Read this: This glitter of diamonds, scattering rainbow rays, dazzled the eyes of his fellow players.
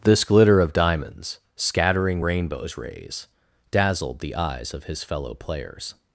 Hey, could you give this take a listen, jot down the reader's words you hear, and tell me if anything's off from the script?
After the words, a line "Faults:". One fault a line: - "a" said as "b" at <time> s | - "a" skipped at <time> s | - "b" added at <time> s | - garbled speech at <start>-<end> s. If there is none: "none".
This glitter of diamonds, scattering rainbows rays, dazzled the eyes of his fellow players.
Faults:
- "rainbow" said as "rainbows" at 2.2 s